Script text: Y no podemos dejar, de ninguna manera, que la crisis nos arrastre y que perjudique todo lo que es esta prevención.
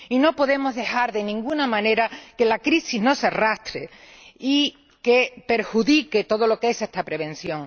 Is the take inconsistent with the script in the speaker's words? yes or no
no